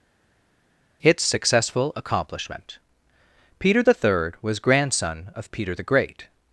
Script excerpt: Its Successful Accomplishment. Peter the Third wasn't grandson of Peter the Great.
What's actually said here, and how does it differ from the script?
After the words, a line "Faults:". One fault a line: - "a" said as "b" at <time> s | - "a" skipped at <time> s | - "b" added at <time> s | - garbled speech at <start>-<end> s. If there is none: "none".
Its Successful Accomplishment. Peter the Third was grandson of Peter the Great.
Faults:
- "wasn't" said as "was" at 4.4 s